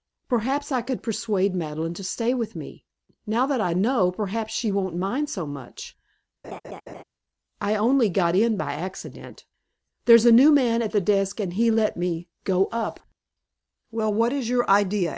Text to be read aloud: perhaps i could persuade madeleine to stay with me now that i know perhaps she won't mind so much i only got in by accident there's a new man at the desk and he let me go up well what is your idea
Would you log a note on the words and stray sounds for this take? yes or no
yes